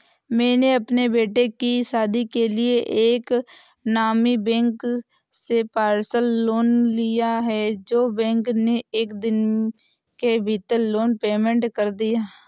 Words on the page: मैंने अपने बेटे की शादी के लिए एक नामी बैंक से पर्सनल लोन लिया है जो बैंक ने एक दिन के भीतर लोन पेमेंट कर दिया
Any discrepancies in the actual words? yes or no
no